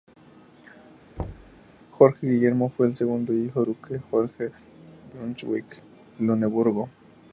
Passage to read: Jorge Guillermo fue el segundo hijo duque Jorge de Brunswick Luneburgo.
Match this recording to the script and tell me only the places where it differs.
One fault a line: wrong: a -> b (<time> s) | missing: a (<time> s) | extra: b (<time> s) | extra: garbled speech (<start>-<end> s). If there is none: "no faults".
no faults